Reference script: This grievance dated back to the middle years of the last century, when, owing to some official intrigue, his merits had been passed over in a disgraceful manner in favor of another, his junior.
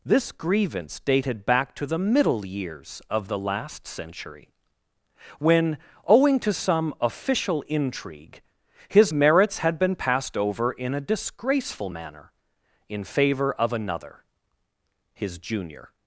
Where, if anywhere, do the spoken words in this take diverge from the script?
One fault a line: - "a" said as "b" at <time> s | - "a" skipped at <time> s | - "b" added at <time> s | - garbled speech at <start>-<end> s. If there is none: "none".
none